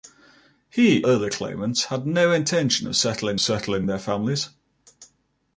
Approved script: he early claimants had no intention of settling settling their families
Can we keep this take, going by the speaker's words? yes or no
yes